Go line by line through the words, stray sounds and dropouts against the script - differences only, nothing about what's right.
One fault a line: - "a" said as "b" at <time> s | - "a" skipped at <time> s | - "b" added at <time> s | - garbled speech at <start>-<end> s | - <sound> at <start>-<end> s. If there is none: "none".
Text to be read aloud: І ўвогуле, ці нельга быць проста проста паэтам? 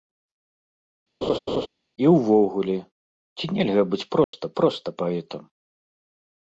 - laugh at 1.2-1.7 s
- dropout at 4.2-4.3 s